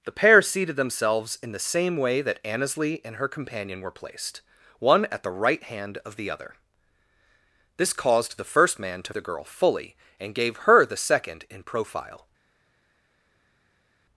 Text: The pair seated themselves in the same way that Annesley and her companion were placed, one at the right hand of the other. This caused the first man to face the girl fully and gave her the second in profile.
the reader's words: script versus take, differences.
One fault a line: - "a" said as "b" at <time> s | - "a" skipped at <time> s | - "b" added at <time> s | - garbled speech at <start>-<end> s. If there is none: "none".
- "face" skipped at 9.1 s